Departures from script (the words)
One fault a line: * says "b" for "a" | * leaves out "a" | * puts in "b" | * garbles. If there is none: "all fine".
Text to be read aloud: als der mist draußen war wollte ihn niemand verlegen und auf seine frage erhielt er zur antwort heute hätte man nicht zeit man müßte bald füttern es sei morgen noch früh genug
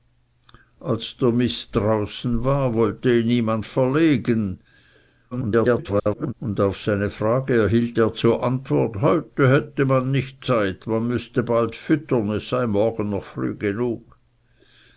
* garbles